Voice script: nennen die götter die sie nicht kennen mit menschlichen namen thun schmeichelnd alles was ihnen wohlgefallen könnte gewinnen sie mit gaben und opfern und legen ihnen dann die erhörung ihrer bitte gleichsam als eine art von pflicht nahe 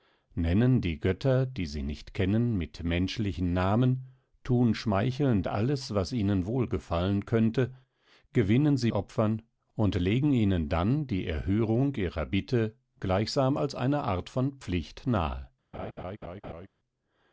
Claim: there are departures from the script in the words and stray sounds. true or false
true